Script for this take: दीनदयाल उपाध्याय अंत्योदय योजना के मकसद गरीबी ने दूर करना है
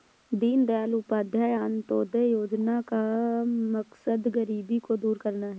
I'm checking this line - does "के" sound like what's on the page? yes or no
no